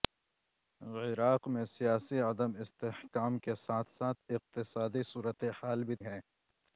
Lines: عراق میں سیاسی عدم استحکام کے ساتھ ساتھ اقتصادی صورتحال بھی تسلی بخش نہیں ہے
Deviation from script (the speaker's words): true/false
true